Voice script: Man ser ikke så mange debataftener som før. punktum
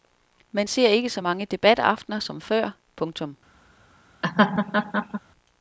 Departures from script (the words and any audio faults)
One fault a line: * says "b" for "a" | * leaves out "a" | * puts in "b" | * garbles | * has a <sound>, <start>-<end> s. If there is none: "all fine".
* has a laugh, 4.2-5.2 s